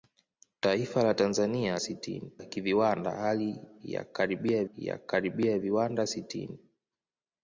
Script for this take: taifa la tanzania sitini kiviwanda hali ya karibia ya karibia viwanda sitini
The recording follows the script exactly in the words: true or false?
true